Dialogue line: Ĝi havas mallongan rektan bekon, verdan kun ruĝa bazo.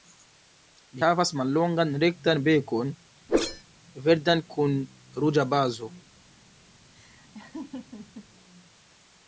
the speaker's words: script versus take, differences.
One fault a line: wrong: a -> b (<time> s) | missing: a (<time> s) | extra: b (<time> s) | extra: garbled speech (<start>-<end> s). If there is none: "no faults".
no faults